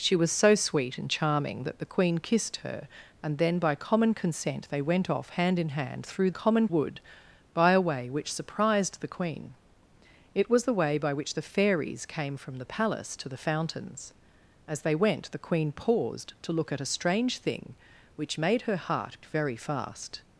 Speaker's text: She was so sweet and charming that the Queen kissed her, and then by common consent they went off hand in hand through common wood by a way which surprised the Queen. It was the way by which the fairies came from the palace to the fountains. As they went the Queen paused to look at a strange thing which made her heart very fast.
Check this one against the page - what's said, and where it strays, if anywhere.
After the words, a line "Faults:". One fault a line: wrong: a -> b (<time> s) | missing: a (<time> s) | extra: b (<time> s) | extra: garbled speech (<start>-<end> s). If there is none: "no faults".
She was so sweet and charming that the Queen kissed her, and then by common consent they went off hand in hand through common wood by a way which surprised the Queen. It was the way by which the fairies came from the palace to the fountains. As they went the Queen paused to look at a strange thing which made her heart very fast.
Faults:
no faults